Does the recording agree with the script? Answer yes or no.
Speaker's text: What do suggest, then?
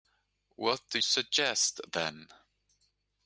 yes